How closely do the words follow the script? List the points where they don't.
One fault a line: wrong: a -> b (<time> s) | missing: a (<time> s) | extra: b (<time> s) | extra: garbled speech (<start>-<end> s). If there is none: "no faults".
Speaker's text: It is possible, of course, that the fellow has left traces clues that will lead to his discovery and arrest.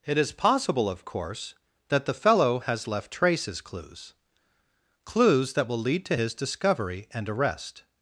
extra: clues (5.0 s)